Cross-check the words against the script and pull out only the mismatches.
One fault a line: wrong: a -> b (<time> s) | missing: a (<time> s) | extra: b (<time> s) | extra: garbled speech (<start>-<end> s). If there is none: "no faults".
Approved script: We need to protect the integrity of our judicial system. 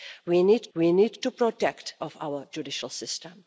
extra: we need (0.7 s)
missing: the integrity (2.0 s)